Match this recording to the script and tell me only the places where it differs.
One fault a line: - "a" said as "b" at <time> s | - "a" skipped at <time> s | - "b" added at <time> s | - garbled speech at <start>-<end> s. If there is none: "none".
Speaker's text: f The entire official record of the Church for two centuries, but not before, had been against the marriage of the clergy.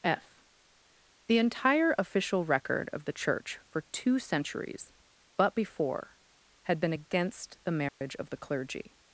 - "not" skipped at 5.5 s